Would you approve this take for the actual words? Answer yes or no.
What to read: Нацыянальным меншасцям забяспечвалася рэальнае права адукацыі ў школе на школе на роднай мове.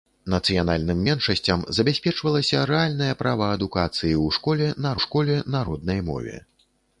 yes